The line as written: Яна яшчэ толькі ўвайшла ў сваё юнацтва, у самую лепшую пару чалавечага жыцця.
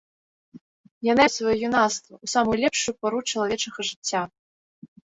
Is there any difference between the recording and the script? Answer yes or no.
yes